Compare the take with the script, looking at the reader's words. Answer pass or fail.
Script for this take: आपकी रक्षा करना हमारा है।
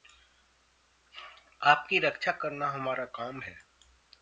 fail